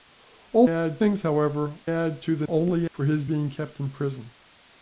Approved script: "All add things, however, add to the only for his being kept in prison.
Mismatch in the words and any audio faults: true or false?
false